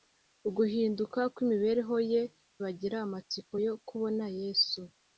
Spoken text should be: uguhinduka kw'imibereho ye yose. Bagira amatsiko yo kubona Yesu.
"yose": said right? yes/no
no